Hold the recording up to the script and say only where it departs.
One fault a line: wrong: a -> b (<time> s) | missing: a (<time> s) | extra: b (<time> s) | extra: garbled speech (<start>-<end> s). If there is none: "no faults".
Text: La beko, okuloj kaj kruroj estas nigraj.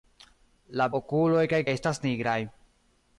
missing: beko (0.9 s)
missing: kruroj (1.6 s)